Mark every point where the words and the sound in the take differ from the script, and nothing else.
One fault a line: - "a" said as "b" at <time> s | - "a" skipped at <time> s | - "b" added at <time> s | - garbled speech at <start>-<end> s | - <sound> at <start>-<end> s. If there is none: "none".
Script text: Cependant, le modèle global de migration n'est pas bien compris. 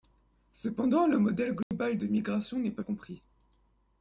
- dropout at 1.6-1.7 s
- "bien" skipped at 2.8 s